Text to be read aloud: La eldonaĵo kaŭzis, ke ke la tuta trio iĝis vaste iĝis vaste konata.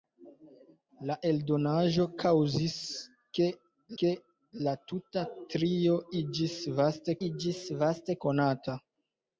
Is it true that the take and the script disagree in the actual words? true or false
false